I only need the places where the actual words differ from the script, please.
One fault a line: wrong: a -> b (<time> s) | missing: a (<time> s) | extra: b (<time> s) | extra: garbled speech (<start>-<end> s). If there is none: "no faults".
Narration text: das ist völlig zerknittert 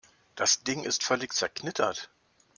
extra: ding (0.6 s)